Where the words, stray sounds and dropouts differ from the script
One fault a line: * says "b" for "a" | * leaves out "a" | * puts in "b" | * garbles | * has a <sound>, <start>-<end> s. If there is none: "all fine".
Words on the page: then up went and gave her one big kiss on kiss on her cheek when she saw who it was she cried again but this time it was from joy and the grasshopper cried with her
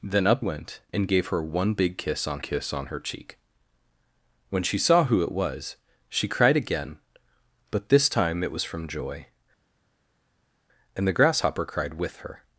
all fine